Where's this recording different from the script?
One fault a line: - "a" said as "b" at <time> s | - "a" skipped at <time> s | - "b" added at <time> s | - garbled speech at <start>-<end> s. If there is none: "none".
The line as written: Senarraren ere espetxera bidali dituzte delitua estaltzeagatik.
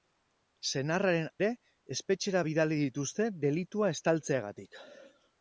none